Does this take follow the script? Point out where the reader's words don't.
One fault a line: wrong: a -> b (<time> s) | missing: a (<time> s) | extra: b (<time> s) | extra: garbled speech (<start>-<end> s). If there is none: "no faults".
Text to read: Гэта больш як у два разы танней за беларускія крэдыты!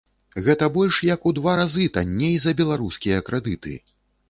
no faults